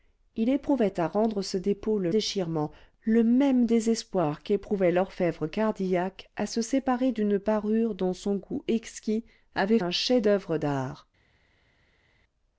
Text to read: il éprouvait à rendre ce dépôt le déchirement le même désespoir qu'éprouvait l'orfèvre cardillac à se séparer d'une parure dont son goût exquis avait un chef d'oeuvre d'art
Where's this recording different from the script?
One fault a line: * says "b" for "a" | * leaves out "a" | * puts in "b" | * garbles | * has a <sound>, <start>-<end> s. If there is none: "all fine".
all fine